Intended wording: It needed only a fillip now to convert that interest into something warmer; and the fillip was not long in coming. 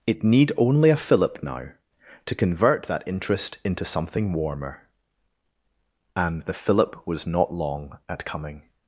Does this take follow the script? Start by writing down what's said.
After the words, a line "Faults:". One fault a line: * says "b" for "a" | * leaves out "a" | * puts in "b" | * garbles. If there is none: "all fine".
It need only a fillip now to convert that interest into something warmer; and the fillip was not long at coming.
Faults:
* says "need" for "needed"
* says "at" for "in"